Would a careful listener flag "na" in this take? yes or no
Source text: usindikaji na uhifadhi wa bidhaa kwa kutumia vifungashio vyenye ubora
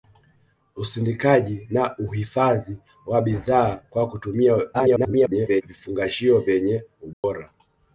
no